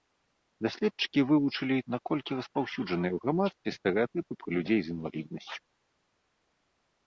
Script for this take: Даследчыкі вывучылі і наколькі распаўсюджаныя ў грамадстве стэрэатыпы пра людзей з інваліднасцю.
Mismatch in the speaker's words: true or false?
false